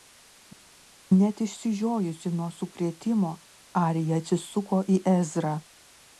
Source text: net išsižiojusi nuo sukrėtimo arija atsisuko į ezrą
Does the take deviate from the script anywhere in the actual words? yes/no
no